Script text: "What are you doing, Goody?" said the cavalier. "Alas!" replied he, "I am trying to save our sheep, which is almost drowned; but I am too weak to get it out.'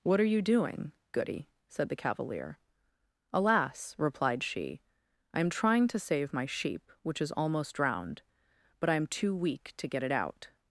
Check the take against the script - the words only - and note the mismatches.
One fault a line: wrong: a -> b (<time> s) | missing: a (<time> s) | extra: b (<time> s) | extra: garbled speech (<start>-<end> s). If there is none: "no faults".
wrong: he -> she (4.4 s)
wrong: our -> my (6.3 s)